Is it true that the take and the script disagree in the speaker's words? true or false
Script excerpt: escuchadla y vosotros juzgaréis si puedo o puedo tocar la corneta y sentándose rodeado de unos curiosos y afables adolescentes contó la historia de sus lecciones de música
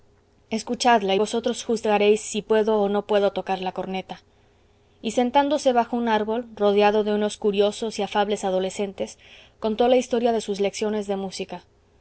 true